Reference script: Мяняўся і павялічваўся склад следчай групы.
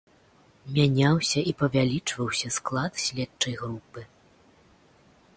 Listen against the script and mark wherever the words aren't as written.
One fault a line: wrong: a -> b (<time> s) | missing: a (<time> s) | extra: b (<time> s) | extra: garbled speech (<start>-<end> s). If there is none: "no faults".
no faults